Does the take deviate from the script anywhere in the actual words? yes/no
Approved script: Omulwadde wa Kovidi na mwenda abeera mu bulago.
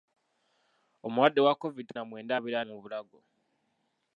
no